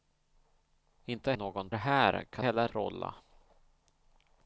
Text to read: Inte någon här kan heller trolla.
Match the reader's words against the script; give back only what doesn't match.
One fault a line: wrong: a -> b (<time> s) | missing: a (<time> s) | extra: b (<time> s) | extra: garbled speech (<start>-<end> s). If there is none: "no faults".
no faults